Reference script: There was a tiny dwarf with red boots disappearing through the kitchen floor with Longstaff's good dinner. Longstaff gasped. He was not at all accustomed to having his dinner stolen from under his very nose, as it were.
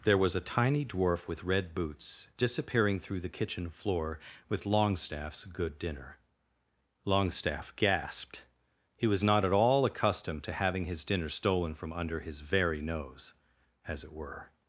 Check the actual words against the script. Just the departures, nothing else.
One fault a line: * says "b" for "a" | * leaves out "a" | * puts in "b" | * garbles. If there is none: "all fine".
all fine